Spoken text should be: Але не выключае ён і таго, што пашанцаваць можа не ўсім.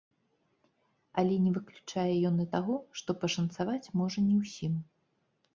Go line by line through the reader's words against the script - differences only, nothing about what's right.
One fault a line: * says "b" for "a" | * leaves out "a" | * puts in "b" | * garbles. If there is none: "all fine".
all fine